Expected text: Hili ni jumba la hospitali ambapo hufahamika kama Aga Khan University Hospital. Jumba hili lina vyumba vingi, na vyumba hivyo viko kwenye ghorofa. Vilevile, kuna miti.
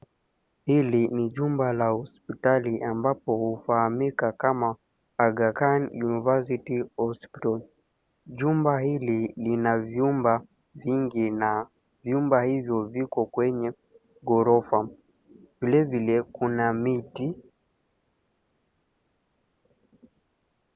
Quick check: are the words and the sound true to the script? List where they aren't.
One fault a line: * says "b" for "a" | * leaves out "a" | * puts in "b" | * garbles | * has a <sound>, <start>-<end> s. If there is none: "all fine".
all fine